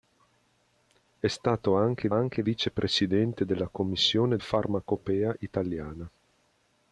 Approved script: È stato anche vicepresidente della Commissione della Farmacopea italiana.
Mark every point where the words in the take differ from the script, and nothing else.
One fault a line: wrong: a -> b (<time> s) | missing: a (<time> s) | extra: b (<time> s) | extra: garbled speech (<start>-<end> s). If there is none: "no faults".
extra: anche (2.1 s)
missing: della (4.4 s)